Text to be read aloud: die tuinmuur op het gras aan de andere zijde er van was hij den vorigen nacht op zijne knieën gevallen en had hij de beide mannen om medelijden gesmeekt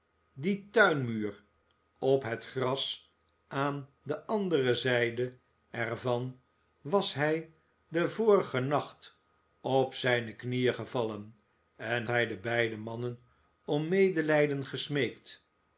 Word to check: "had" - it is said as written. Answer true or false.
false